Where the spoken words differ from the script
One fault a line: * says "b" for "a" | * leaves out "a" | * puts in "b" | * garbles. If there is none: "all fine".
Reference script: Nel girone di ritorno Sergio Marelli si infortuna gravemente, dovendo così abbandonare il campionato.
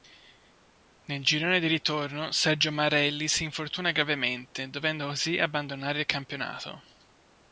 all fine